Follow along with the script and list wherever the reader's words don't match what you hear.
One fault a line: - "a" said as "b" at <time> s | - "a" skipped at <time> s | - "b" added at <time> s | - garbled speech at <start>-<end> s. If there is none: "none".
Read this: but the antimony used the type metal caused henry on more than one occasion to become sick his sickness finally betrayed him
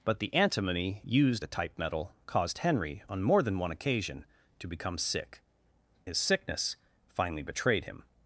none